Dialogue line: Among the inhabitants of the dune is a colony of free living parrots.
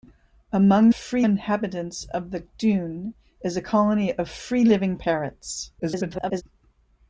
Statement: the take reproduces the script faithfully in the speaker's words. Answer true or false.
false